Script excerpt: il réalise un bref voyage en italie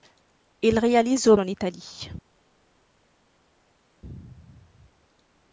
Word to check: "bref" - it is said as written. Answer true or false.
false